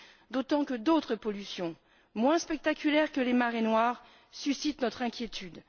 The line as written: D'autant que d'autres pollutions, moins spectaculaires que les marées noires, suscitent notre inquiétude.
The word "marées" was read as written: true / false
true